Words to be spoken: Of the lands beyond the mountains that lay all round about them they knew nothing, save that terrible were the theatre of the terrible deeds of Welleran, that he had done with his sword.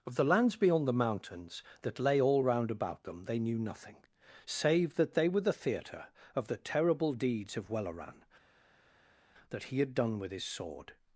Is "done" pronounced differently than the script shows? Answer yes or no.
no